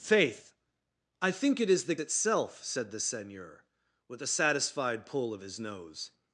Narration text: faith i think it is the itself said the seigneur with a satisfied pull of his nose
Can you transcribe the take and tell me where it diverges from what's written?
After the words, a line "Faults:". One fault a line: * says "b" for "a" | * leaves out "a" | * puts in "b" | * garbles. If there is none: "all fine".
faith i think it is the itself said the seigneur with a satisfied pull of his nose
Faults:
all fine